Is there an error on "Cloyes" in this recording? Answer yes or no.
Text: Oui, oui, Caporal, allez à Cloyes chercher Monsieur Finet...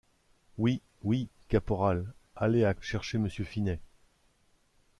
yes